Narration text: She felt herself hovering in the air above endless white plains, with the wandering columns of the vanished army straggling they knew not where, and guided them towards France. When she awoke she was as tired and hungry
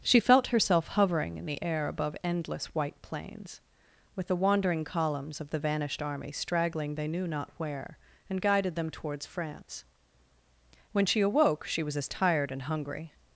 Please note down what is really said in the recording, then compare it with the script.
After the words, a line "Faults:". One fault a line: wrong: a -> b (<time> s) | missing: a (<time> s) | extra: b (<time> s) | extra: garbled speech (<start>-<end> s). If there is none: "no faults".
She felt herself hovering in the air above endless white plains, with the wandering columns of the vanished army straggling they knew not where, and guided them towards France. When she awoke she was as tired and hungry
Faults:
no faults